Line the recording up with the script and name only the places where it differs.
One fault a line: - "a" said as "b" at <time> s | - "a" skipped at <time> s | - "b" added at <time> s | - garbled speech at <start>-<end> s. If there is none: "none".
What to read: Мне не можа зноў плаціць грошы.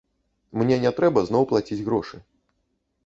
- "можа" said as "трэба" at 1.0 s